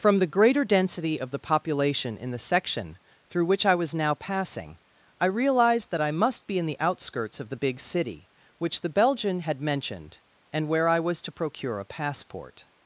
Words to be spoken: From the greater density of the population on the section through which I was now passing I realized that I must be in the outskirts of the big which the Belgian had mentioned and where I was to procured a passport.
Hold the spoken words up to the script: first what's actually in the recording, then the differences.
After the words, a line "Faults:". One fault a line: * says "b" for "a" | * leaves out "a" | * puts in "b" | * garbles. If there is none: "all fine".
From the greater density of the population in the section through which I was now passing I realized that I must be in the outskirts of the big city which the Belgian had mentioned and where I was to procure a passport.
Faults:
* says "in" for "on"
* puts in "city"
* says "procure" for "procured"